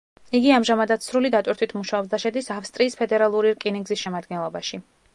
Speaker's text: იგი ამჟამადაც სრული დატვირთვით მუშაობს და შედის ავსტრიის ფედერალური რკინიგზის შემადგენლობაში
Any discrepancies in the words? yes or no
no